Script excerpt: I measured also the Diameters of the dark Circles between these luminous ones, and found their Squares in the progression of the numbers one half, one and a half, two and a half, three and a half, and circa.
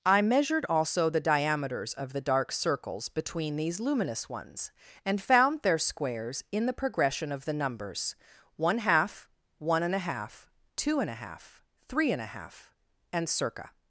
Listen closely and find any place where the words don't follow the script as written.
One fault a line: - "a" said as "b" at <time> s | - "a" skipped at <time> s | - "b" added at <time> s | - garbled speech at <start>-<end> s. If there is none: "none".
none